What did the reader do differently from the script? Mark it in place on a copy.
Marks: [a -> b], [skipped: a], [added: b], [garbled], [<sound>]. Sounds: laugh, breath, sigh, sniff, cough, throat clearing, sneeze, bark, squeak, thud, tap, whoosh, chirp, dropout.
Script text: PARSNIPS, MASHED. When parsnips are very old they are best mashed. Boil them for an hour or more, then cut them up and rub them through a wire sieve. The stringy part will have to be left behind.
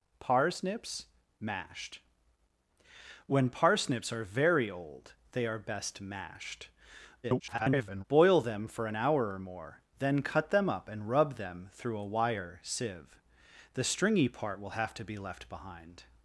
PARSNIPS, MASHED. When parsnips are very old they are best mashed. [garbled] Boil them for an hour or more, then cut them up and rub them through a wire sieve. The stringy part will have to be left behind.